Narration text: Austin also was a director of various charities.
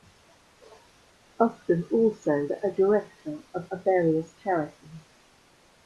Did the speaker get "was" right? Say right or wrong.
wrong